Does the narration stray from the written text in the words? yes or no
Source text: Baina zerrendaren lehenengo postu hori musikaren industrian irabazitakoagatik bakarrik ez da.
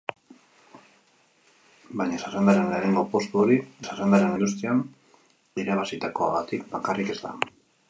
yes